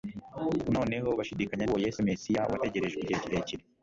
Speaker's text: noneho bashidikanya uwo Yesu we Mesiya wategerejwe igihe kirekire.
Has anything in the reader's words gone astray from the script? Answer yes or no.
no